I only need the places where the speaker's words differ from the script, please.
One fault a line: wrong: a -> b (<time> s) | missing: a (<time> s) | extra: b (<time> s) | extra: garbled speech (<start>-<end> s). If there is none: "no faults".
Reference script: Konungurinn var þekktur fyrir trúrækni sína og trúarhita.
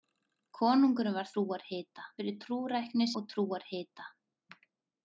wrong: þekktur -> trúarhita (1.3 s)
missing: sína (3.1 s)